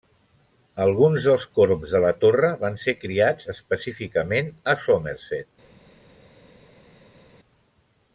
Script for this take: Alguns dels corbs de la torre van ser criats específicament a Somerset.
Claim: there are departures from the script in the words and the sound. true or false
false